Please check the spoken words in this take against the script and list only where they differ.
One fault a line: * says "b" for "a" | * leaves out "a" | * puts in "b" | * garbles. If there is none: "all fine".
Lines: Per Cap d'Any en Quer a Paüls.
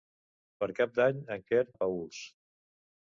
all fine